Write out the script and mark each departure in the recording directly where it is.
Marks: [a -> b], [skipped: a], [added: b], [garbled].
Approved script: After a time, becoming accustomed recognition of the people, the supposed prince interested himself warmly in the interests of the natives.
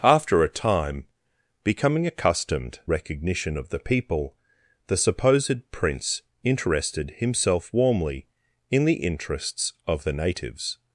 After a time, becoming accustomed recognition of the people, the supposed prince interested himself warmly in the interests of the natives.